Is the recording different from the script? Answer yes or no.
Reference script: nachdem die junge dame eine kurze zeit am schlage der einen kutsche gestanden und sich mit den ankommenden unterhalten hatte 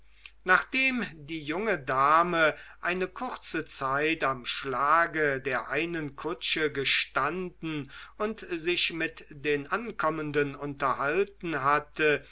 no